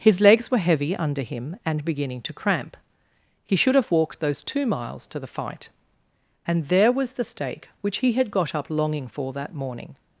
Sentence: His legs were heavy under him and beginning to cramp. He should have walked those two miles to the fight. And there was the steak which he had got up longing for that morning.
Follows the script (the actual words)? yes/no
yes